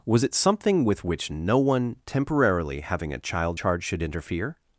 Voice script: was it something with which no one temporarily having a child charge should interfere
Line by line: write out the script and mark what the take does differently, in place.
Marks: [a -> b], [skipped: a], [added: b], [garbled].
was it something with which no one temporarily having a child charge should interfere